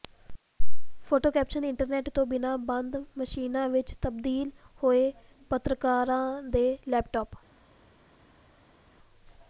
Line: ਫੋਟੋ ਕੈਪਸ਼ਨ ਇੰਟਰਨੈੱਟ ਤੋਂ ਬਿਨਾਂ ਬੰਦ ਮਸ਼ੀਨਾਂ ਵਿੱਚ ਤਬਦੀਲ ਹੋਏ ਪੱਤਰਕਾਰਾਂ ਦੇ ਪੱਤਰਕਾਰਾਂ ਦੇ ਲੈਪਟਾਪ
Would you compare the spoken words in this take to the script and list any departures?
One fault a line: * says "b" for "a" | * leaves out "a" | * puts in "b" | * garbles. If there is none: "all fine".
* leaves out "ਪੱਤਰਕਾਰਾਂ ਦੇ"